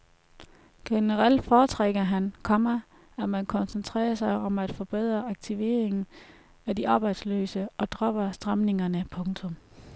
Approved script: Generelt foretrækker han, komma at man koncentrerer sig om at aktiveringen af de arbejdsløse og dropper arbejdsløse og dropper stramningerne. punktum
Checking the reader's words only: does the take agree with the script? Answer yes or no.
no